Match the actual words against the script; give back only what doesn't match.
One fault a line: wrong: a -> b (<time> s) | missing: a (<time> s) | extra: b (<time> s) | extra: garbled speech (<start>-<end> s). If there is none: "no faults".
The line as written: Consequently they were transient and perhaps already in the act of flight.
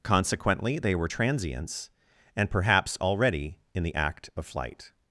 wrong: transient -> transients (1.0 s)